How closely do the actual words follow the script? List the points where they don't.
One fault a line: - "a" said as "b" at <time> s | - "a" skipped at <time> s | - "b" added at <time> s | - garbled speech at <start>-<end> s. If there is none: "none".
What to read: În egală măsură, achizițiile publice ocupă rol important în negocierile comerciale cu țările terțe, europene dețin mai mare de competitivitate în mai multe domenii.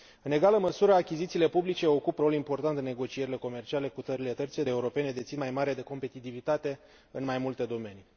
none